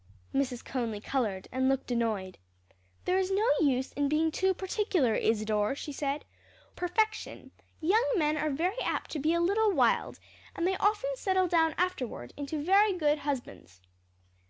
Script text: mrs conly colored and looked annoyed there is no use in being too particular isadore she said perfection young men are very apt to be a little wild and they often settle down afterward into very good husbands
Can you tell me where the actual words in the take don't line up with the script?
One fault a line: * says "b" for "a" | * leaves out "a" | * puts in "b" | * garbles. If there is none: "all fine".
all fine